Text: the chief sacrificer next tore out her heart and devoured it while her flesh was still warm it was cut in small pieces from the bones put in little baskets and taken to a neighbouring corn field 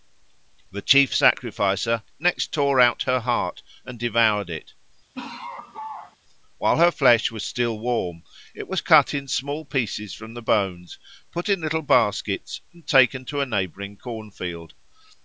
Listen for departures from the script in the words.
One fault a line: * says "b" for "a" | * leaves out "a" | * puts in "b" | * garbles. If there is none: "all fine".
all fine